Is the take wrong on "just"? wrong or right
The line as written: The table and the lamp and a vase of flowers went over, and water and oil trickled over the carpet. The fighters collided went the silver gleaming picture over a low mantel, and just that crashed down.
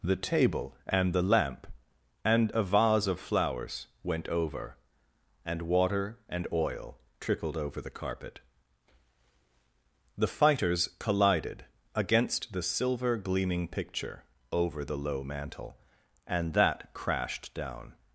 wrong